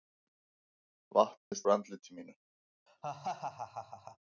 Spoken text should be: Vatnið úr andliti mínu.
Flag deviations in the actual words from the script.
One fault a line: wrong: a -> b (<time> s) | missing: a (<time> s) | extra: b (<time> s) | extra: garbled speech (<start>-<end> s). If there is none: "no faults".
no faults